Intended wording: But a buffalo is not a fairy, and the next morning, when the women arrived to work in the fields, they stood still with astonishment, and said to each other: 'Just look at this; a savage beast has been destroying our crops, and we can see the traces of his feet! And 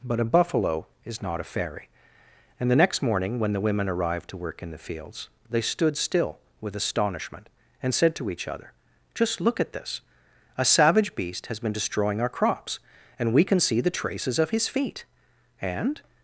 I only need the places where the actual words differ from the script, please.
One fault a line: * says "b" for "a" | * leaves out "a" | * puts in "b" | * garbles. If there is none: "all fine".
all fine